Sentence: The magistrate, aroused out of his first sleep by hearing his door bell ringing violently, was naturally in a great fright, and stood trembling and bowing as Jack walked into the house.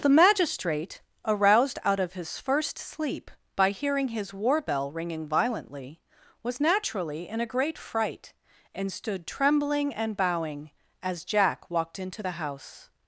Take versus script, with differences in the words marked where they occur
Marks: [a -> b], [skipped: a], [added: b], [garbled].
The magistrate, aroused out of his first sleep by hearing his [door -> war] bell ringing violently, was naturally in a great fright, and stood trembling and bowing as Jack walked into the house.